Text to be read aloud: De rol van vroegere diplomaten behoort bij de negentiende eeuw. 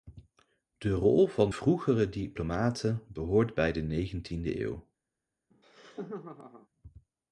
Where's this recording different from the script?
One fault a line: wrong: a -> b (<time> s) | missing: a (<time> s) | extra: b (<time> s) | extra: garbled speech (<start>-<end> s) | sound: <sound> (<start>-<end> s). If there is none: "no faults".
sound: laugh (5.5-6.7 s)